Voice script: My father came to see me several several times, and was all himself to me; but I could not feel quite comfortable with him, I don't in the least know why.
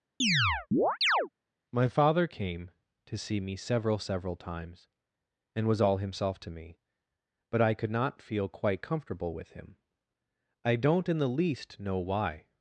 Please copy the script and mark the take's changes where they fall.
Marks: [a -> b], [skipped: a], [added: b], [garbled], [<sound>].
[chirp] My father came to see me several several times, and was all himself to me; but I could not feel quite comfortable with him, I don't in the least know why.